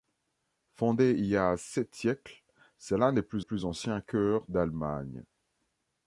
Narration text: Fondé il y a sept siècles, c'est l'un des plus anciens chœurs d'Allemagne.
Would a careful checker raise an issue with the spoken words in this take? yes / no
yes